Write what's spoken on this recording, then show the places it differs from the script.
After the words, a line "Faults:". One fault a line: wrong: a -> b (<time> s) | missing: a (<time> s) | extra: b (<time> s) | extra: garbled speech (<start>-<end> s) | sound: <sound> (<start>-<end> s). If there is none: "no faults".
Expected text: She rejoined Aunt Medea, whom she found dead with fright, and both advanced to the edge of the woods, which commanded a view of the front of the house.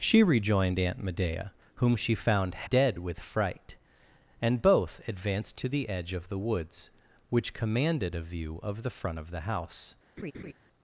She rejoined Aunt Medea, whom she found dead with fright, and both advanced to the edge of the woods, which commanded a view of the front of the house.
Faults:
sound: laugh (10.2-10.5 s)